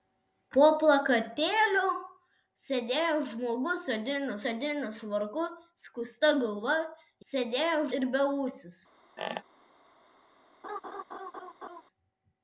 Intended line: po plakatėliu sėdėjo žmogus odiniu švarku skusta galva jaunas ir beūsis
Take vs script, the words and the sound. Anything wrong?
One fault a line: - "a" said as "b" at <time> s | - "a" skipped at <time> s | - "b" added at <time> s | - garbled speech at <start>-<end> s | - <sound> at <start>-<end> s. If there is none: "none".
- "odiniu" added at 4.5 s
- "jaunas" said as "sėdėjo" at 7.3 s
- squeak at 9.2-9.4 s
- laugh at 10.6-11.8 s